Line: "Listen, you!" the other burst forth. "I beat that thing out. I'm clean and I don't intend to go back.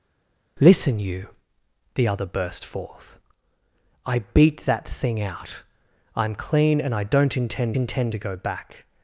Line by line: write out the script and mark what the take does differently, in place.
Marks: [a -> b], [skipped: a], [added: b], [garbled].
"Listen, you!" the other burst forth. "I beat that thing out. I'm clean and I don't intend [added: intend] to go back.